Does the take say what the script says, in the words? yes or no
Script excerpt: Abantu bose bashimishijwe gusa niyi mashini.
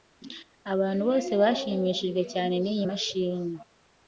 no